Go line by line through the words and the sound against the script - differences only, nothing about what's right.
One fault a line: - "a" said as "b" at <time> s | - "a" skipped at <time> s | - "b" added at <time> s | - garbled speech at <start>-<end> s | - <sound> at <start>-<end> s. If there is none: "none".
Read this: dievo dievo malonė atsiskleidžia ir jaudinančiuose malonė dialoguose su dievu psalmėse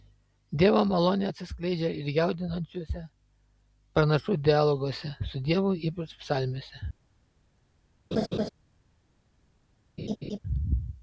- "dievo" skipped at 0.8 s
- "malonė" said as "pranašų" at 4.0 s
- "ypač" added at 5.9 s
- laugh at 8.1-8.5 s
- laugh at 10.0-10.4 s